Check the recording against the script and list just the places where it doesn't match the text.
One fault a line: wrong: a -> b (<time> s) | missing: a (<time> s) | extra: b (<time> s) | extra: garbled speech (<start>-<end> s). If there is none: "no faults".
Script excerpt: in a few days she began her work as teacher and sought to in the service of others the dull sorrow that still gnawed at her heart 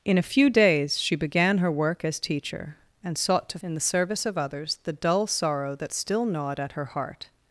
no faults